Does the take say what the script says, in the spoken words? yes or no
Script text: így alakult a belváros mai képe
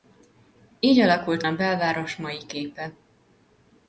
yes